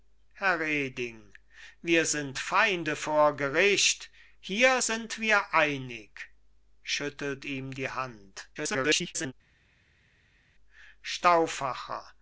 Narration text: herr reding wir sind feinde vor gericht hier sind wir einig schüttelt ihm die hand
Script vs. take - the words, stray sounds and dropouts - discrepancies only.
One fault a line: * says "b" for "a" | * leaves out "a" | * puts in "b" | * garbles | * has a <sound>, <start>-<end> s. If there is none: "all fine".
* garbles